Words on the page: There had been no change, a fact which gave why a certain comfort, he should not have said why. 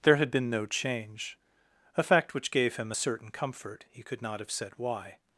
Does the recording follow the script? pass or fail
fail